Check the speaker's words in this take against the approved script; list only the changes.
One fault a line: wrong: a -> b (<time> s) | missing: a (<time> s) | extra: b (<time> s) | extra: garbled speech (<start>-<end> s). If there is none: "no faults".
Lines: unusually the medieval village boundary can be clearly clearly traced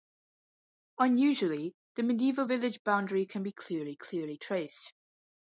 no faults